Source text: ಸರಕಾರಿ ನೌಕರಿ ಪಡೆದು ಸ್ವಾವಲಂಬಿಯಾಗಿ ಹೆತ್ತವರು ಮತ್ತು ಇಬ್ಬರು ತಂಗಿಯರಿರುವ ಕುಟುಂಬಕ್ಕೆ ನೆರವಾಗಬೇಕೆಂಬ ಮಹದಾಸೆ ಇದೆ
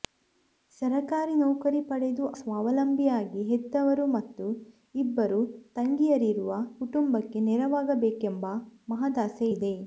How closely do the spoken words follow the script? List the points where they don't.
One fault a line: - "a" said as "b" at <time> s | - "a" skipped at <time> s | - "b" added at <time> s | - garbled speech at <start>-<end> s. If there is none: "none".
none